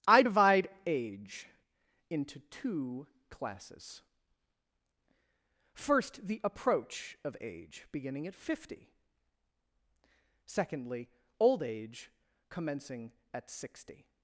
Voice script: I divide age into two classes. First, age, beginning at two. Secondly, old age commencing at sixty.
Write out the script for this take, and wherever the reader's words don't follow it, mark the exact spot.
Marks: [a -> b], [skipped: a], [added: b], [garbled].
I divide age into two classes. First, [added: the approach of] age, beginning at [two. -> fifty] Secondly, old age commencing at sixty.